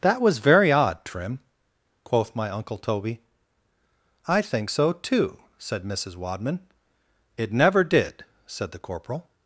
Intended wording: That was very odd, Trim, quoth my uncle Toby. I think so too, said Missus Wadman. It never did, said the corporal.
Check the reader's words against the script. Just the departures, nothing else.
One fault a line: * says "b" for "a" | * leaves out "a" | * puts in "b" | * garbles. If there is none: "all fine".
all fine